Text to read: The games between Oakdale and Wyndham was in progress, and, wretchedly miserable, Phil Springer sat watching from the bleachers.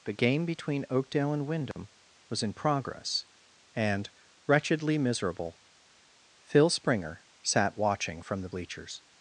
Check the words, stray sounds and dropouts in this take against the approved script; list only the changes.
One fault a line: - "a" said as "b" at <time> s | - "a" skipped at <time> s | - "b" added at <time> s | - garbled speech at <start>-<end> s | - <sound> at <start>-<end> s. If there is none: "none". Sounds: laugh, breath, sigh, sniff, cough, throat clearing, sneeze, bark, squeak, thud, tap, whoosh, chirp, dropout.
- "games" said as "game" at 0.1 s
- dropout at 1.7-1.8 s